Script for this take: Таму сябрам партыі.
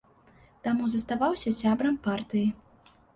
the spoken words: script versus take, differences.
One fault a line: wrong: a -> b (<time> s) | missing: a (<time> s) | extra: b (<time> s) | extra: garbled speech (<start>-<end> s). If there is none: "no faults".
extra: заставаўся (0.9 s)